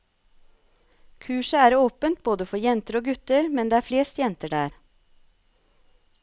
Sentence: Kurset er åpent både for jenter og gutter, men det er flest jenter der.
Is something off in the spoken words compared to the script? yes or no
no